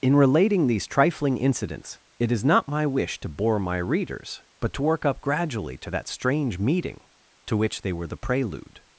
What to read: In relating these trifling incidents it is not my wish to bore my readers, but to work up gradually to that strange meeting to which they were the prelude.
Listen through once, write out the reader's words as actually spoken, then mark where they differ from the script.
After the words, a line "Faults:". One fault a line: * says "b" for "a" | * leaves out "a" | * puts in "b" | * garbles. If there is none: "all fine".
In relating these trifling incidents it is not my wish to bore my readers, but to work up gradually to that strange meeting to which they were the prelude.
Faults:
all fine